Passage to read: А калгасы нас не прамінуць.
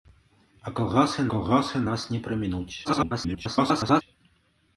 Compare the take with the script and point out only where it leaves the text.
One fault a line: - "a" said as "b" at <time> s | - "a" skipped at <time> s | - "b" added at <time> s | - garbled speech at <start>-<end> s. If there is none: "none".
- "калгасы" added at 1.3 s
- garbled speech at 2.8-4.0 s